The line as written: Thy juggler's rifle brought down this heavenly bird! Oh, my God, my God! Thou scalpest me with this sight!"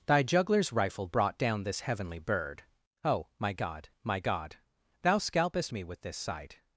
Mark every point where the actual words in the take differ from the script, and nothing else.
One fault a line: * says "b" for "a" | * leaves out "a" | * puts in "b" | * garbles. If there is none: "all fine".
all fine